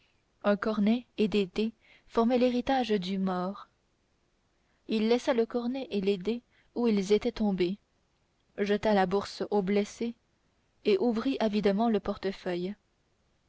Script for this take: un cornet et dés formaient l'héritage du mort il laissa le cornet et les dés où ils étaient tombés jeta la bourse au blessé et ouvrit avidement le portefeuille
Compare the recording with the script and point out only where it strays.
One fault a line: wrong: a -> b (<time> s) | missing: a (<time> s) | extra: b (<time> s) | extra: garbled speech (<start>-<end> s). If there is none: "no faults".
extra: des (1.3 s)